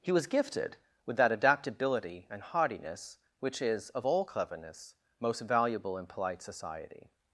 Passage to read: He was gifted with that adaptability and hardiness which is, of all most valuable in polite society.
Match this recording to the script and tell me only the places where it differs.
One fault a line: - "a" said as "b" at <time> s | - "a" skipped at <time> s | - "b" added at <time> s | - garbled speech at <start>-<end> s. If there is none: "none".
- "cleverness" added at 4.2 s